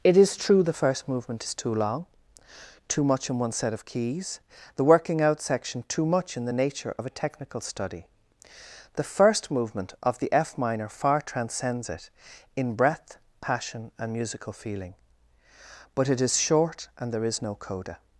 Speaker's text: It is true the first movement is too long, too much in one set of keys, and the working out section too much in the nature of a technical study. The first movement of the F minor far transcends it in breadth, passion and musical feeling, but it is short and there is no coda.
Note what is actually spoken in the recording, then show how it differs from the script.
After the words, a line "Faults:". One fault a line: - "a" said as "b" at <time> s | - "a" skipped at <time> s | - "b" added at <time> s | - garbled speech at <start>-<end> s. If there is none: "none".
It is true the first movement is too long, too much in one set of keys, the working out section too much in the nature of a technical study. The first movement of the F minor far transcends it in breadth, passion and musical feeling, but it is short and there is no coda.
Faults:
- "and" skipped at 4.4 s